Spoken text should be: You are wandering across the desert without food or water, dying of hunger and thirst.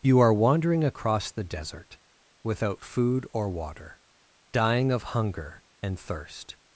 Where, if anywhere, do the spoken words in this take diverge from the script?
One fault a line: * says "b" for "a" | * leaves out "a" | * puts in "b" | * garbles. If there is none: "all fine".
all fine